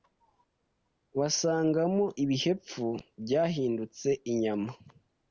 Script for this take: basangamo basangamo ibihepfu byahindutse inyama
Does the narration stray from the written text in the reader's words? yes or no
yes